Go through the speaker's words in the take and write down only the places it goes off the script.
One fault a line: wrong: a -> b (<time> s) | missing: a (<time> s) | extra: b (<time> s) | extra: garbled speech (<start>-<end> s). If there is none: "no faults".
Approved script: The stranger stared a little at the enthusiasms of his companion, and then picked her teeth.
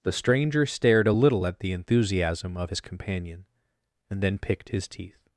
wrong: enthusiasms -> enthusiasm (1.7 s)
wrong: her -> his (4.7 s)